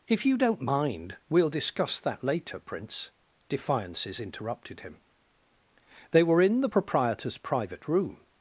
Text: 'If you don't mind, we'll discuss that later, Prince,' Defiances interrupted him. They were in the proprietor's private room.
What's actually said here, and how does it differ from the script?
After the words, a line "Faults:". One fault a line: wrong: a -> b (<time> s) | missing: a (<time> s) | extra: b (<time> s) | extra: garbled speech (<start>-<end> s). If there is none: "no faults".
'If you don't mind, we'll discuss that later, Prince,' Defiances interrupted him. They were in the proprietor's private room.
Faults:
no faults